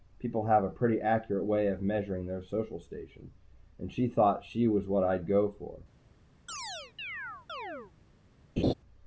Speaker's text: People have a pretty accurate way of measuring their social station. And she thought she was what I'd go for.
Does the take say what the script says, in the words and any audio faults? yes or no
no